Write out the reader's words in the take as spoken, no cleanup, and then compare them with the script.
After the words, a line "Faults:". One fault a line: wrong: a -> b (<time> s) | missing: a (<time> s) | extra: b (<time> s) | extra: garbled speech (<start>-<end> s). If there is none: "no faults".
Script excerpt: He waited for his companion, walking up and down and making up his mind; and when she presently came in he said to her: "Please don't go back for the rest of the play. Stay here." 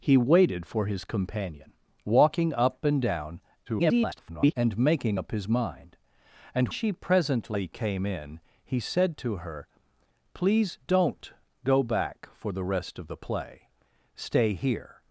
He waited for his companion, walking up and down [garbled] and making up his mind; and she presently came in he said to her: "Please don't go back for the rest of the play. Stay here."
Faults:
extra: garbled speech (3.7-4.5 s)
missing: when (6.7 s)